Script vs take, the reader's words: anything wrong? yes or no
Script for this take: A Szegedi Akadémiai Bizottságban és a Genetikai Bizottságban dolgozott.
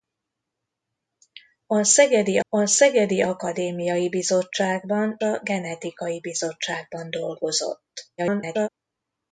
yes